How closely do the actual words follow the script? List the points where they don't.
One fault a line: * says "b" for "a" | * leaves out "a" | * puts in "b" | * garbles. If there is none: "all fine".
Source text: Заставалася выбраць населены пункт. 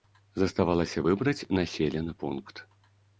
all fine